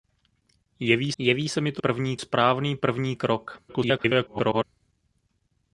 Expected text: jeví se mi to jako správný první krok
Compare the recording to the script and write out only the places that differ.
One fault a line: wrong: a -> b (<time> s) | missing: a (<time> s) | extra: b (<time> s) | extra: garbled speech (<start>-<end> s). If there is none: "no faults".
extra: jeví (1.2 s)
wrong: jako -> první (1.8 s)
extra: garbled speech (3.7-4.6 s)